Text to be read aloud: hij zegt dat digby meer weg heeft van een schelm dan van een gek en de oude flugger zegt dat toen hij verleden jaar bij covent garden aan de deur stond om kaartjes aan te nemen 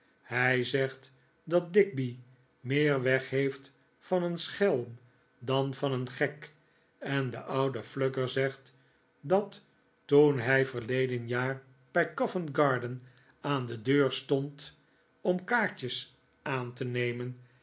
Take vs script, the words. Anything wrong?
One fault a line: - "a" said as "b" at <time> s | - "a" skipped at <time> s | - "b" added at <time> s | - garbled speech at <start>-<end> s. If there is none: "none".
none